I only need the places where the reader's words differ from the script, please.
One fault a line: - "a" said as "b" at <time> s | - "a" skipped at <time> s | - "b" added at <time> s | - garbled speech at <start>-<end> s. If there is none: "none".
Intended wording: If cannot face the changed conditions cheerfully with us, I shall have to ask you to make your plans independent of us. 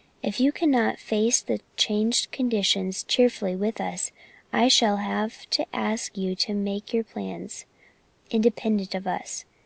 - "you" added at 0.4 s